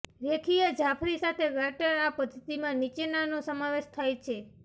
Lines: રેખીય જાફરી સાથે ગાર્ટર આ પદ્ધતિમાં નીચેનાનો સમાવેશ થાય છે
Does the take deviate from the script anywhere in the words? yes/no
no